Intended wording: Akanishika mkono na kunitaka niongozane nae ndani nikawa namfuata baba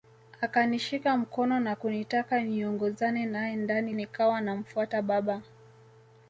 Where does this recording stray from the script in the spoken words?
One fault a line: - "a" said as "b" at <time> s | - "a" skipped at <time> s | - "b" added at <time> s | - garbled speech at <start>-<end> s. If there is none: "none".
none